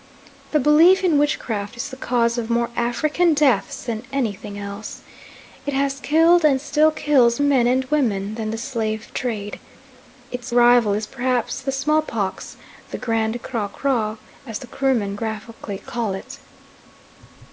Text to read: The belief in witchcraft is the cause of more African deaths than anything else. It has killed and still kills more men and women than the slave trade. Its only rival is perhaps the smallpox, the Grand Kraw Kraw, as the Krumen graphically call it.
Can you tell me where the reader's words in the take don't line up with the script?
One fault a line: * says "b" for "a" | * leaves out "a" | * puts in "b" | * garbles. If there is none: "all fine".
* leaves out "more"
* leaves out "only"